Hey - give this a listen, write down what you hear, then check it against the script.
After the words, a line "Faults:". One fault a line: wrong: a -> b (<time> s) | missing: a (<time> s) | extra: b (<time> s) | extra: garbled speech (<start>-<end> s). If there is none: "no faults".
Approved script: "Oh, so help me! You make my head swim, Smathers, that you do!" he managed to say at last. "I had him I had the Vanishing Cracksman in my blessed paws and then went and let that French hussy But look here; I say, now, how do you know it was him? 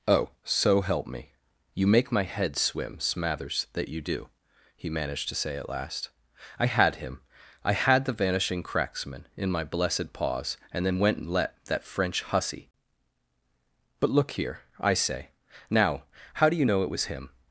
"Oh, so help me! You make my head swim, Smathers, that you do!" he managed to say at last. "I had him I had the Vanishing Cracksman in my blessed paws and then went and let that French hussy But look here; I say, now, how do you know it was him?
Faults:
no faults